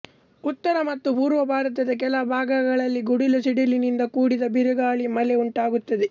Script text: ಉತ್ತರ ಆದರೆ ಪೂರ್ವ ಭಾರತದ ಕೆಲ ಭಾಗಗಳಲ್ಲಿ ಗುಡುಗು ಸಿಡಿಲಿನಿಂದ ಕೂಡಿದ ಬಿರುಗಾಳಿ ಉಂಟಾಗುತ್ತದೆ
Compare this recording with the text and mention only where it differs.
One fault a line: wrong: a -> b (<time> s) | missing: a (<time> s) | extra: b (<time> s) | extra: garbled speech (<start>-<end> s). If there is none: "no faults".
wrong: ಆದರೆ -> ಮತ್ತು (0.8 s)
extra: ಮಳೆ (5.2 s)